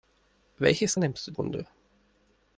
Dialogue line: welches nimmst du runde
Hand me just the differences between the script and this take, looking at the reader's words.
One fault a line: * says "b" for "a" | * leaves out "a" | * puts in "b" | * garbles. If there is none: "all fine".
all fine